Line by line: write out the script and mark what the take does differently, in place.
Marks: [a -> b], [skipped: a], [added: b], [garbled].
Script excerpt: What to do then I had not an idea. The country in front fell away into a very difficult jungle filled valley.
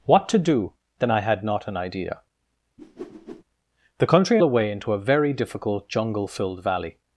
What to do then I had not an idea. The country [skipped: in front fell] away into a very difficult jungle filled valley.